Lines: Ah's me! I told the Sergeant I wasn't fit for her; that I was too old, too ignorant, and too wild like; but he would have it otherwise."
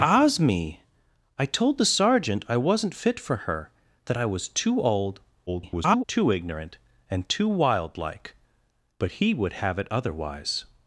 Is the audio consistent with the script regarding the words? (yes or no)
no